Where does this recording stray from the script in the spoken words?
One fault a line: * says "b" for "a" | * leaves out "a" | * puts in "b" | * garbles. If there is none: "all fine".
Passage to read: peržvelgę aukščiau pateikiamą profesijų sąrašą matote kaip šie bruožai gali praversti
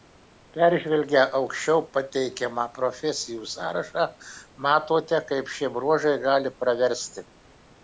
all fine